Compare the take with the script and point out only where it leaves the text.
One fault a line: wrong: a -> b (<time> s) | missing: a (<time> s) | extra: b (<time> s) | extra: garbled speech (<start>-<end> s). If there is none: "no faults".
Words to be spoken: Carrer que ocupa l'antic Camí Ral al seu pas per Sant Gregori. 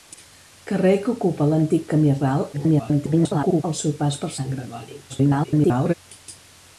extra: garbled speech (2.5-3.6 s)
extra: garbled speech (5.1-5.9 s)